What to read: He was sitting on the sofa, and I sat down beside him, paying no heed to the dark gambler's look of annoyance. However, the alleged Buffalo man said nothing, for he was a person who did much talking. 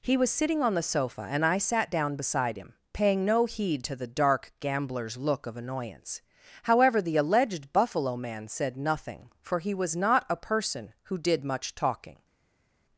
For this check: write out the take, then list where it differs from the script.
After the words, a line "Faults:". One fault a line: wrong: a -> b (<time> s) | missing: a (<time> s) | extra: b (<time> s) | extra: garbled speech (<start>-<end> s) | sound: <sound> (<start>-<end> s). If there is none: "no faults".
He was sitting on the sofa, and I sat down beside him, paying no heed to the dark gambler's look of annoyance. However, the alleged Buffalo man said nothing, for he was not a person who did much talking.
Faults:
extra: not (10.0 s)